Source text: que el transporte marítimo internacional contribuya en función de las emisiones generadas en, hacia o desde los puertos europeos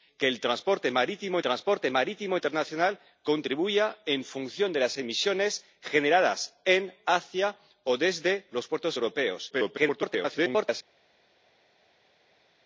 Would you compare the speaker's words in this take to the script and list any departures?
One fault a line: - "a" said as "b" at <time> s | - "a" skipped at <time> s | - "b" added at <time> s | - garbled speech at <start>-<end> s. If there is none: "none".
- "transporte marítimo" added at 1.4 s
- garbled speech at 9.5-10.8 s